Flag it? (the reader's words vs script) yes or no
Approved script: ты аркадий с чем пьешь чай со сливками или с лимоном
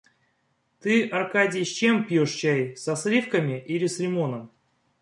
no